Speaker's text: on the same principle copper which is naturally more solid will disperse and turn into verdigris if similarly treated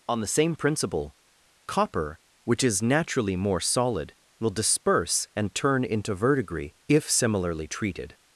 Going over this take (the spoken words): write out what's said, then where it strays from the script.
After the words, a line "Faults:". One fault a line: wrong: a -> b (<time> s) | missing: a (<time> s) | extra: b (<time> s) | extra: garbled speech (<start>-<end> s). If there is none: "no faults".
on the same principle copper which is naturally more solid will disperse and turn into verdigris if similarly treated
Faults:
no faults